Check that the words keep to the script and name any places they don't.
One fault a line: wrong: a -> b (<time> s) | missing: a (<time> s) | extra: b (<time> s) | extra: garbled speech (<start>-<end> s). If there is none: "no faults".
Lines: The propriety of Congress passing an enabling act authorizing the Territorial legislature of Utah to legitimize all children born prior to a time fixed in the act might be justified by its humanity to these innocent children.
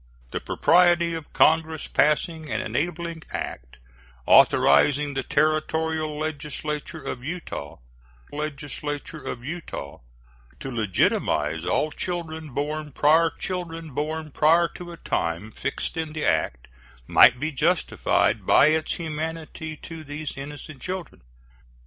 extra: legislature of Utah (8.3 s)
extra: children born prior (13.3 s)